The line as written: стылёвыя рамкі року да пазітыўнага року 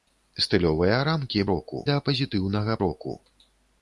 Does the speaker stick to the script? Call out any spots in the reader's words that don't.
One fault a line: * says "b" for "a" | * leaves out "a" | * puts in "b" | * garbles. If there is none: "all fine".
all fine